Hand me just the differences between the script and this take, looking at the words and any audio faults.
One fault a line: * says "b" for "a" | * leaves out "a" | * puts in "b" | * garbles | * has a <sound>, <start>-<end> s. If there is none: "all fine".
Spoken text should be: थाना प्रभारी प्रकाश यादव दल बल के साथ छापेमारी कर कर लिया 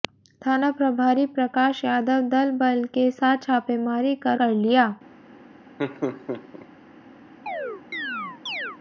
* has a laugh, 5.8-6.7 s
* has a chirp, 7.5-8.8 s